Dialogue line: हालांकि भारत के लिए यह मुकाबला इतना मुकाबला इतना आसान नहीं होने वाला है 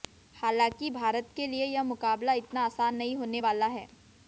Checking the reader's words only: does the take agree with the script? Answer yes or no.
no